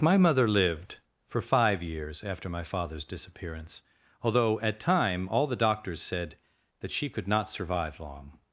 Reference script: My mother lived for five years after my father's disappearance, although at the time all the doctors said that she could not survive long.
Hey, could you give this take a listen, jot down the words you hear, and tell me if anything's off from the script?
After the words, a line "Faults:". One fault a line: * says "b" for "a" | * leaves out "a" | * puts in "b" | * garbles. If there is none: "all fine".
My mother lived for five years after my father's disappearance, although at time all the doctors said that she could not survive long.
Faults:
* leaves out "the"